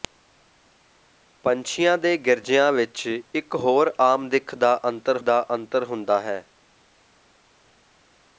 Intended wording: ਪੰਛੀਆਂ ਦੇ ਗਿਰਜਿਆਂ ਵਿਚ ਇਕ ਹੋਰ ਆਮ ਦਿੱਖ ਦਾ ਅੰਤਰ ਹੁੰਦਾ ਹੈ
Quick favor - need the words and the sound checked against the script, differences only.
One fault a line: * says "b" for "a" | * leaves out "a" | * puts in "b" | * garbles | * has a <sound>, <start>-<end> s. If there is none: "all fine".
* puts in "ਦਾ ਅੰਤਰ"